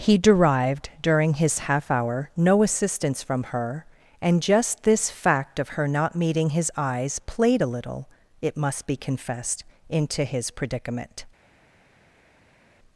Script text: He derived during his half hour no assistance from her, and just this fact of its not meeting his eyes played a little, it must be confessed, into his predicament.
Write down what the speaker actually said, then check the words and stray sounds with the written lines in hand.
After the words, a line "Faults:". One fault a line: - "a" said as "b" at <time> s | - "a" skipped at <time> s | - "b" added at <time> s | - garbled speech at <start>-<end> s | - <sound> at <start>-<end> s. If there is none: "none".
He derived during his half hour no assistance from her, and just this fact of her not meeting his eyes played a little, it must be confessed, into his predicament.
Faults:
- "its" said as "her" at 5.7 s